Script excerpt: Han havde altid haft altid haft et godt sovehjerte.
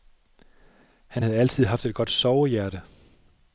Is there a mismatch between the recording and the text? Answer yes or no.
yes